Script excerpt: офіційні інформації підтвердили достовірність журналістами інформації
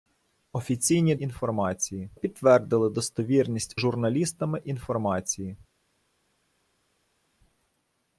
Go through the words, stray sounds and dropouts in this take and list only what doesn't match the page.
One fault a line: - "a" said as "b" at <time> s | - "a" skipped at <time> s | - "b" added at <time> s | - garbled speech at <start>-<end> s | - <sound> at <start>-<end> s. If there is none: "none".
none